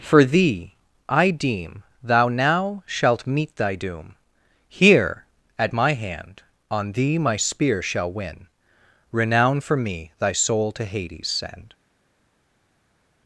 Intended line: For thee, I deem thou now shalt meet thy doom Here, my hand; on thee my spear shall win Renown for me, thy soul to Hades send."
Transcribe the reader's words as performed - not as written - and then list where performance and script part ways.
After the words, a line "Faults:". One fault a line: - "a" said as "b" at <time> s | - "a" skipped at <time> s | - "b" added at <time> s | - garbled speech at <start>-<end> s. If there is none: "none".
For thee, I deem thou now shalt meet thy doom Here, at my hand; on thee my spear shall win Renown for me, thy soul to Hades send."
Faults:
- "at" added at 5.6 s